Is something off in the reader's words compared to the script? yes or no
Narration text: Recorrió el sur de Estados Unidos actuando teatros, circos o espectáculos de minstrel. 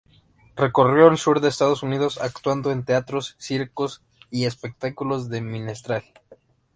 yes